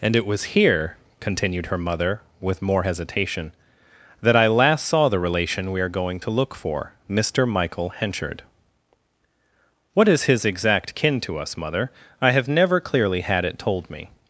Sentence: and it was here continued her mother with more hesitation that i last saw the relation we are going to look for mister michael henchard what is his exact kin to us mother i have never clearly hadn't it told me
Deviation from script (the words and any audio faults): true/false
true